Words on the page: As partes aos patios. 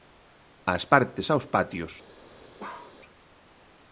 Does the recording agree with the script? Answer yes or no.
yes